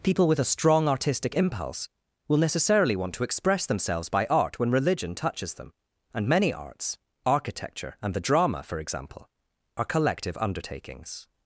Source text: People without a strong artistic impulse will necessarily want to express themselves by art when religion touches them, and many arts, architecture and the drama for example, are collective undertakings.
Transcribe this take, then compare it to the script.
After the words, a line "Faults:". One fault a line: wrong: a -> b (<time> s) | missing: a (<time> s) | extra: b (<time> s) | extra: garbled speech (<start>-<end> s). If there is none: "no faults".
People with a strong artistic impulse will necessarily want to express themselves by art when religion touches them, and many arts, architecture and the drama for example, are collective undertakings.
Faults:
wrong: without -> with (0.3 s)